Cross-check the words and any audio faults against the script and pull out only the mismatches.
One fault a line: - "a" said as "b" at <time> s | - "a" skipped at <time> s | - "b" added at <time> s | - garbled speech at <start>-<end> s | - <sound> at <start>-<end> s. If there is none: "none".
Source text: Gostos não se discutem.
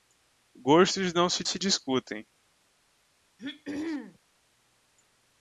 - "se" added at 1.4 s
- throat clearing at 3.4-4.2 s